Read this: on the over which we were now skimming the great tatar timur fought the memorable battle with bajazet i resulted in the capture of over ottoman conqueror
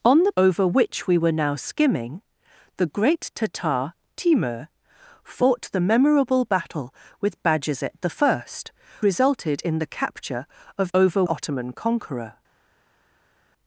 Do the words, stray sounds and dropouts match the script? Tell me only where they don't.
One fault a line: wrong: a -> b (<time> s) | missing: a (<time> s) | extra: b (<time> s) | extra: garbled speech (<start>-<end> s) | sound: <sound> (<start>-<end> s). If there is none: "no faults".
no faults